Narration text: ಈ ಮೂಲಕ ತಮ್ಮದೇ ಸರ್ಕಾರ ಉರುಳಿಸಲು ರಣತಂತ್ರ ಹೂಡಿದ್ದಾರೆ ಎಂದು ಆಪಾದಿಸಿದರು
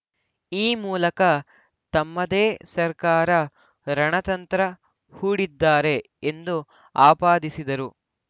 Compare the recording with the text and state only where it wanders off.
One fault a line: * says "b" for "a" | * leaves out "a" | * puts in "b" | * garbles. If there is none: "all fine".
* leaves out "ಉರುಳಿಸಲು"